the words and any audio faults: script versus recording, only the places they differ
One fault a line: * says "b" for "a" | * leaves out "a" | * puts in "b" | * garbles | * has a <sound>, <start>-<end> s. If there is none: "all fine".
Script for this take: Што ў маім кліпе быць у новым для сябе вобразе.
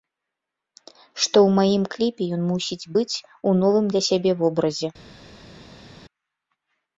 * puts in "ён мусіць"